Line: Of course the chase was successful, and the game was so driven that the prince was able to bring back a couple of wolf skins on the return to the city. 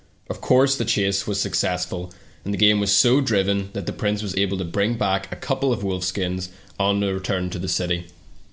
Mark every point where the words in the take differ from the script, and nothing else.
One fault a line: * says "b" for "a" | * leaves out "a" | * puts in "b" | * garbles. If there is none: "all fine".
all fine